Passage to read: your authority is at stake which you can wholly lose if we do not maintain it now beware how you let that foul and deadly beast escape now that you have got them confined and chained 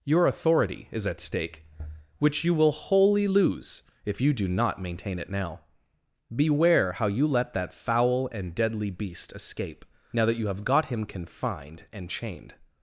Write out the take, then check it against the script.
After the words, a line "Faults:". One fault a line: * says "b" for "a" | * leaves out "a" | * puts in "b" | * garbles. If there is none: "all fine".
your authority is at stake which you will wholly lose if you do not maintain it now beware how you let that foul and deadly beast escape now that you have got him confined and chained
Faults:
* says "will" for "can"
* says "you" for "we"
* says "him" for "them"